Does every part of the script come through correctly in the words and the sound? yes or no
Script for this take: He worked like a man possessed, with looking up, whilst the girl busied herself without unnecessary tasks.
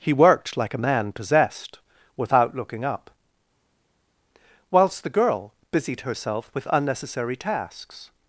no